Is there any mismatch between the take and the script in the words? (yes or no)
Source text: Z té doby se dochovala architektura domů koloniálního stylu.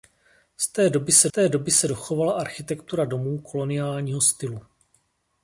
yes